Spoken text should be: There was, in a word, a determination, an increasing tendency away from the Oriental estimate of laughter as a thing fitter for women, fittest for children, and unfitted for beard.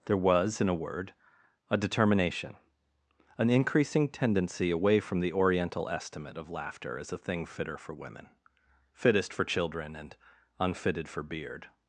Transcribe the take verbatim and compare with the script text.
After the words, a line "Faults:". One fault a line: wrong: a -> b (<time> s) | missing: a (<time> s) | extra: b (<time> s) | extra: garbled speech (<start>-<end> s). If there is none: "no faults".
There was, in a word, a determination, an increasing tendency away from the Oriental estimate of laughter as a thing fitter for women, fittest for children, and unfitted for beard.
Faults:
no faults